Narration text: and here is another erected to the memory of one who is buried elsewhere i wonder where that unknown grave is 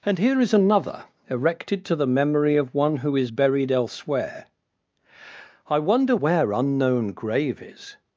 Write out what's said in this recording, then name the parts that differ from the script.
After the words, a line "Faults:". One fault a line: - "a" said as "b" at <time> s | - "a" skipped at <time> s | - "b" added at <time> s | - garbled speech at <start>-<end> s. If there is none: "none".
and here is another erected to the memory of one who is buried elsewhere i wonder where unknown grave is
Faults:
- "that" skipped at 6.5 s